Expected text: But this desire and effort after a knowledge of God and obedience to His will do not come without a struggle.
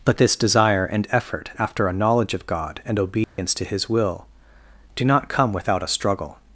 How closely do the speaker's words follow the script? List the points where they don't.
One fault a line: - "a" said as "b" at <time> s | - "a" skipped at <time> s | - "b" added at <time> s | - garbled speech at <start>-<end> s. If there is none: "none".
none